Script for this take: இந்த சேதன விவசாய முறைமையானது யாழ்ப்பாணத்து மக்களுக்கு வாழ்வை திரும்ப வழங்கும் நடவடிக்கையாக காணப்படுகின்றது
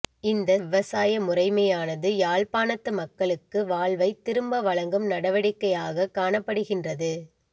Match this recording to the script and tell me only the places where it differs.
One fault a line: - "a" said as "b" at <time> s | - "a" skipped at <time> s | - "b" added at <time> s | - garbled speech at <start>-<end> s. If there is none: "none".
- "சேதன" skipped at 0.5 s